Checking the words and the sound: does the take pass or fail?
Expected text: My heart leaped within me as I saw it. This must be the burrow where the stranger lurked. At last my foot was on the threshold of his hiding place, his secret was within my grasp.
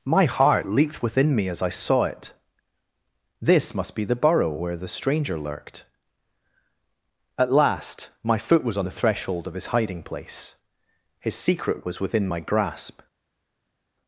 pass